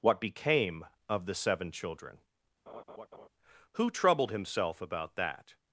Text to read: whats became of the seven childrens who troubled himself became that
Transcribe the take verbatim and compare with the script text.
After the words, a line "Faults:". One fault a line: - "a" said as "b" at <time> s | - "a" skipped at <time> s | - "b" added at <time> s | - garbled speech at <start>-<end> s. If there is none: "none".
what became of the seven children who troubled himself about that
Faults:
- "whats" said as "what" at 0.0 s
- "childrens" said as "children" at 1.7 s
- "became" said as "about" at 4.8 s